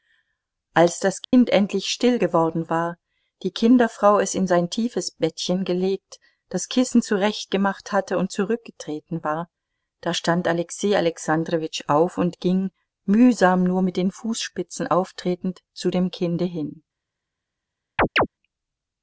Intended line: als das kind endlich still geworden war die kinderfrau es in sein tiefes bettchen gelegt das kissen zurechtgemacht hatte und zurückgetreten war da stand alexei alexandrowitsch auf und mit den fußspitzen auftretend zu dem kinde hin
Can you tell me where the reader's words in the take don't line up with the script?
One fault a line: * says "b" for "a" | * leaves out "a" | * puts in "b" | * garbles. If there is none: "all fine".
* puts in "ging mühsam nur"